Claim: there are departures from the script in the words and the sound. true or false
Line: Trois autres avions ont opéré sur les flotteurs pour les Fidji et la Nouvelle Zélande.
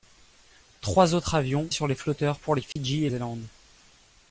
true